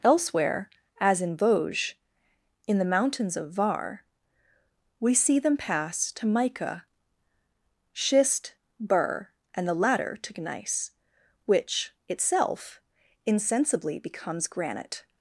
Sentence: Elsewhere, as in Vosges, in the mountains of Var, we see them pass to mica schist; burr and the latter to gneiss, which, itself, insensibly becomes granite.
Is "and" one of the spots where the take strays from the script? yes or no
no